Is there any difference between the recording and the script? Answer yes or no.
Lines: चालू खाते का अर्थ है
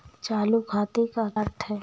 no